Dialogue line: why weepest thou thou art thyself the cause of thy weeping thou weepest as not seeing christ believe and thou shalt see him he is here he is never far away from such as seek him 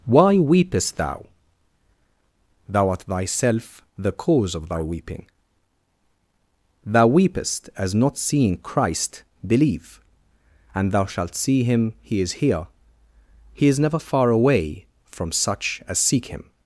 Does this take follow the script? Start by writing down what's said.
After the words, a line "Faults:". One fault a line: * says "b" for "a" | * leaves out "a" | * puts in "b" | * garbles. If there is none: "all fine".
why weepest thou thou art thyself the cause of thy weeping thou weepest as not seeing christ believe and thou shalt see him he is here he is never far away from such as seek him
Faults:
all fine